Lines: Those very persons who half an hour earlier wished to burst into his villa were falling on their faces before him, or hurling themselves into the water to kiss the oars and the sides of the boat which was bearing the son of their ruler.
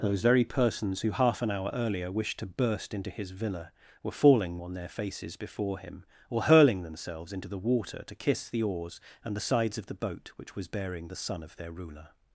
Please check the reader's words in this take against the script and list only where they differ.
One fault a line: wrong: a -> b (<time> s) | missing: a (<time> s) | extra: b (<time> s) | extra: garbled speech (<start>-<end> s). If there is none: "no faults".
no faults